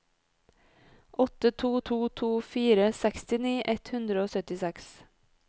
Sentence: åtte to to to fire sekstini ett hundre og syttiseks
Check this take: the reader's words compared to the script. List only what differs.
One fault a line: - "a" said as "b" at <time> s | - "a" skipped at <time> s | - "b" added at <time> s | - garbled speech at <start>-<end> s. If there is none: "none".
none